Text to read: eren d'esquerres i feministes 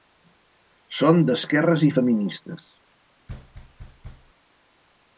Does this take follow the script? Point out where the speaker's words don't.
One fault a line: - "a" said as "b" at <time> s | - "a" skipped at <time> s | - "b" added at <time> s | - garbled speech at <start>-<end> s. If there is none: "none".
- "eren" said as "són" at 1.0 s